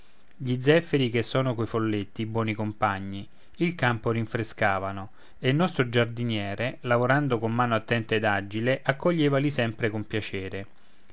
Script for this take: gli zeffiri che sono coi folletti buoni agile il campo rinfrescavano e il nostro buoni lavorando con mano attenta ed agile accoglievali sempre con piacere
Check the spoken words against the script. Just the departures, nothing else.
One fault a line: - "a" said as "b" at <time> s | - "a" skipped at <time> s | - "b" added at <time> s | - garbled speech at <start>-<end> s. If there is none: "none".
- "agile" said as "compagni" at 2.5 s
- "buoni" said as "giardiniere" at 5.9 s